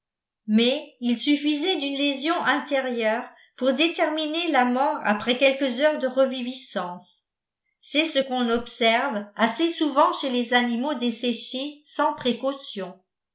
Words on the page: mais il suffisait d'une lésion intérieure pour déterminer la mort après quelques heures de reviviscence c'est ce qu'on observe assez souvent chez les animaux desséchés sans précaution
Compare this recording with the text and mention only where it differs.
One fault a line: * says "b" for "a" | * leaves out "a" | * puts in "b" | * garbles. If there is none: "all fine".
all fine